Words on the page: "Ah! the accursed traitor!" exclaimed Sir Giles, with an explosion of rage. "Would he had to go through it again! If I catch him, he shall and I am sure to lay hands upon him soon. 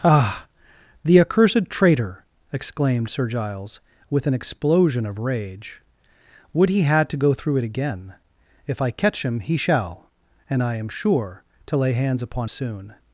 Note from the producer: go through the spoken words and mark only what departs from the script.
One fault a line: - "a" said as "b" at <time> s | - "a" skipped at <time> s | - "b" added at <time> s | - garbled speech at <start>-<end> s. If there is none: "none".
- "him" skipped at 12.5 s